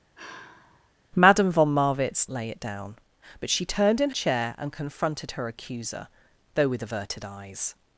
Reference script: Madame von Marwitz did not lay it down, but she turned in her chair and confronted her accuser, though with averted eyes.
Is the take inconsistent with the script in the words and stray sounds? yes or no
yes